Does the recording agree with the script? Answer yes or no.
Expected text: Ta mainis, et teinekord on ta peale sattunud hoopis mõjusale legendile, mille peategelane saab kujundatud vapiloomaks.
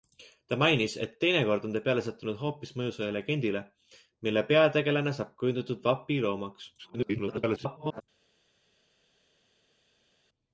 no